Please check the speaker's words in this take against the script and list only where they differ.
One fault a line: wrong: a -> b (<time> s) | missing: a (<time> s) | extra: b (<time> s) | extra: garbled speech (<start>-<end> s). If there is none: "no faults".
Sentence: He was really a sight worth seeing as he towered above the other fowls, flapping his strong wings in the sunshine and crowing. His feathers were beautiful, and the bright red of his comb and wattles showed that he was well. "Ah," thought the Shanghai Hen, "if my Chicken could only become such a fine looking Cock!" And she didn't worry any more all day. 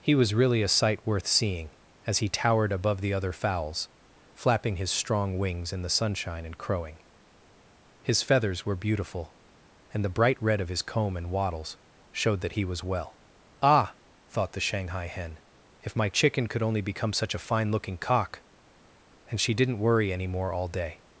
no faults